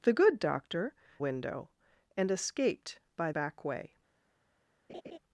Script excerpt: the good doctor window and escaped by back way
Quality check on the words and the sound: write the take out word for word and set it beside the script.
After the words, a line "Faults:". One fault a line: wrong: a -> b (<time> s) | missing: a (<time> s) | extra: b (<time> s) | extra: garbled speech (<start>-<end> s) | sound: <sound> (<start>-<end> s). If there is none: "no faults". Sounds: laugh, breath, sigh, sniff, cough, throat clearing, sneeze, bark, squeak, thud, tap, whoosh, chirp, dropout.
the good doctor window and escaped by back way
Faults:
sound: laugh (4.9-5.2 s)